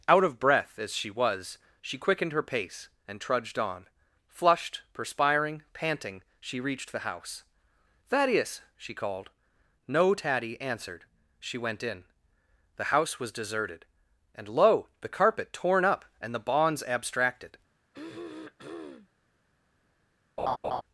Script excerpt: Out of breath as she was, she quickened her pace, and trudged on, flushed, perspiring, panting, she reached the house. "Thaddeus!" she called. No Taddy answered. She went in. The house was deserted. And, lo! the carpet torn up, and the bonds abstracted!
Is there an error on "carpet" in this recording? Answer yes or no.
no